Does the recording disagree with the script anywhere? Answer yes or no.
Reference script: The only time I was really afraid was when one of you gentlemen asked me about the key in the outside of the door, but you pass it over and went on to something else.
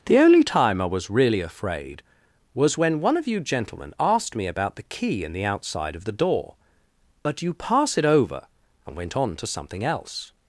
no